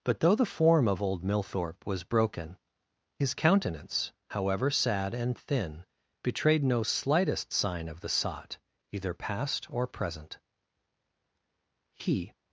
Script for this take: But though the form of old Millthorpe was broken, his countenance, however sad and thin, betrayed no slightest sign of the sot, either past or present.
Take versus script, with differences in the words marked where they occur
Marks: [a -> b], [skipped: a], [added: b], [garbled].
But though the form of old Millthorpe was broken, his countenance, however sad and thin, betrayed no slightest sign of the sot, either past or present. [added: He]